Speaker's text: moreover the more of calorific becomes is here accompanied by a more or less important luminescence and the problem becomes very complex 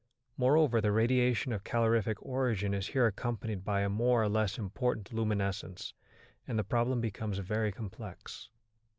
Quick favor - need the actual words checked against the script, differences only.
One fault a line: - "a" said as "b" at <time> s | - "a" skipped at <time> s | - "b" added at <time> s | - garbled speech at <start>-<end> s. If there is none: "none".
- "more" said as "radiation" at 0.9 s
- "becomes" said as "origin" at 2.2 s